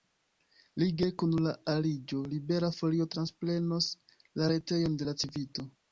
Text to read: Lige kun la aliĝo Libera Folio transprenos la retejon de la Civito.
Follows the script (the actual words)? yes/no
yes